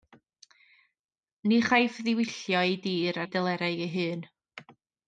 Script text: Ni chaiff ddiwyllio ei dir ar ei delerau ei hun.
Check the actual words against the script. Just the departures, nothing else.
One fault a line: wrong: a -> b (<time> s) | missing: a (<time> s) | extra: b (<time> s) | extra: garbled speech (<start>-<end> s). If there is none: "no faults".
missing: ar (3.2 s)